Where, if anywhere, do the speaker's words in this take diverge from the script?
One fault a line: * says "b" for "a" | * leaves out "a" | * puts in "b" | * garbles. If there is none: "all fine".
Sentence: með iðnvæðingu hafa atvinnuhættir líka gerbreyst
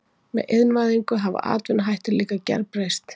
all fine